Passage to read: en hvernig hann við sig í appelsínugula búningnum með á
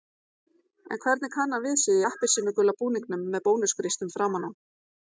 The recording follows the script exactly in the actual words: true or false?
false